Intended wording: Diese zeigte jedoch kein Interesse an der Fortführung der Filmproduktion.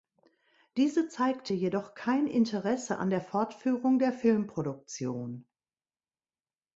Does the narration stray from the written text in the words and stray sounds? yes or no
no